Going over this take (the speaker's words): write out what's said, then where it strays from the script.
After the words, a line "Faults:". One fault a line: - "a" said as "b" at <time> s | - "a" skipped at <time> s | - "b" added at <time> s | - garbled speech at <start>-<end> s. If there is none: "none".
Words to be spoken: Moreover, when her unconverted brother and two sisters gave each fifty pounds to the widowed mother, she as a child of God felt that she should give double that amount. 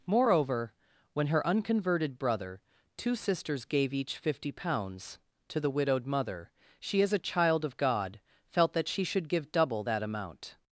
Moreover, when her unconverted brother two sisters gave each fifty pounds to the widowed mother, she as a child of God felt that she should give double that amount.
Faults:
- "and" skipped at 2.6 s